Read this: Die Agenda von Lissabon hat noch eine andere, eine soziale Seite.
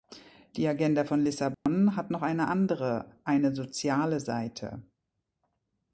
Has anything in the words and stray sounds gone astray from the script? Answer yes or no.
yes